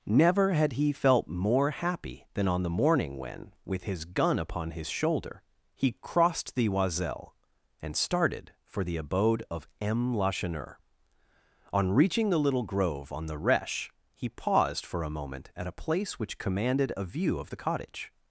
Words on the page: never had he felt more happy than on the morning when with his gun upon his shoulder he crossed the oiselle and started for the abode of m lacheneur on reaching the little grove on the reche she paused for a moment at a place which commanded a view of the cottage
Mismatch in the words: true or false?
true